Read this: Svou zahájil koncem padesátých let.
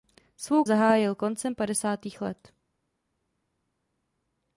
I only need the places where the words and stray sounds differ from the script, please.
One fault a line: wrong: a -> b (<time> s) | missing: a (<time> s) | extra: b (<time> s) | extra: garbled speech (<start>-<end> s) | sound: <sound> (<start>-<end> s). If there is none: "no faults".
no faults